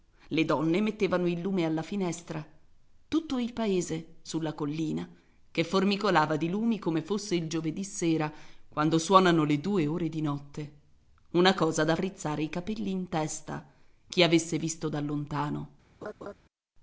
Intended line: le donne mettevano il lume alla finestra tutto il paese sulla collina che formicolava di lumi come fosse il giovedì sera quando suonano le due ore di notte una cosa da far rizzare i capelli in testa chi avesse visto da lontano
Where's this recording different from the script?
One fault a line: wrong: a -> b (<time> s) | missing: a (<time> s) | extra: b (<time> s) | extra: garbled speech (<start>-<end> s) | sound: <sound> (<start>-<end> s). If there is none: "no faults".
missing: far (11.9 s)
sound: laugh (16.0-16.3 s)